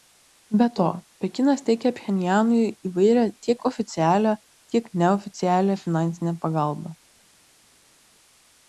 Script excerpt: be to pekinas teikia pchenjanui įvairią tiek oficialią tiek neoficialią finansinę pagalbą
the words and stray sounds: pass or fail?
pass